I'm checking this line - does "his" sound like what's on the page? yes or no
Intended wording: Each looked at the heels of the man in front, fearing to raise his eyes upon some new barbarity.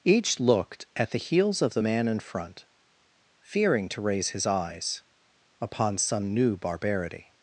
yes